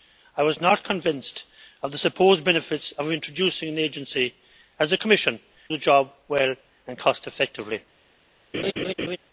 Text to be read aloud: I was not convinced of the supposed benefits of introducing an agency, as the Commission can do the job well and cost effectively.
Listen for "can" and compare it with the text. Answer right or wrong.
wrong